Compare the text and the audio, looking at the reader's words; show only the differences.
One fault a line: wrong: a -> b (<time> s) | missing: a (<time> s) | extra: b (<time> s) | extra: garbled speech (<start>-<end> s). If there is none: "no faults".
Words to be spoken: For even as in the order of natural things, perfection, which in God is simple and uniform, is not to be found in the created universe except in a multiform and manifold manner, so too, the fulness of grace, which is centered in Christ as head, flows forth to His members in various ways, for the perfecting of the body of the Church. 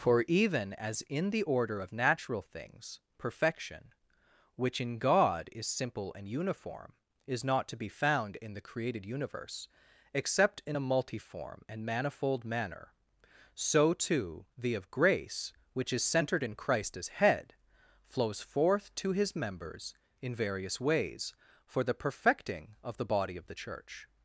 missing: fulness (14.8 s)